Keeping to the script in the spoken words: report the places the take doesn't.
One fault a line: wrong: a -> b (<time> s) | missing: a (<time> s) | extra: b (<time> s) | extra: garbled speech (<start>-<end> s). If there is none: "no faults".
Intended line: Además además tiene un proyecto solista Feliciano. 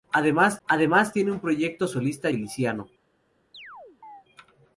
no faults